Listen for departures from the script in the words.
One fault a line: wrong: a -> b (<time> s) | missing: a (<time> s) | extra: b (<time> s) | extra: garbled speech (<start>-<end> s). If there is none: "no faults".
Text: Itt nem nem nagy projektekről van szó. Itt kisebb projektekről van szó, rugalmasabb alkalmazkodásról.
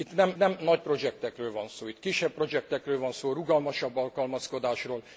no faults